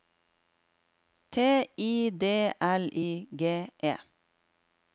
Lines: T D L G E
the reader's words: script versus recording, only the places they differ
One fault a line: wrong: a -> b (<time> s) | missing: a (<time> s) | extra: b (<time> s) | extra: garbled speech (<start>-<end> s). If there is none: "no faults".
extra: I (1.4 s)
extra: I (3.0 s)